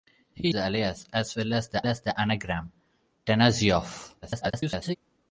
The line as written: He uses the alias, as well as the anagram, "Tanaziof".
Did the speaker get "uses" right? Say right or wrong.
wrong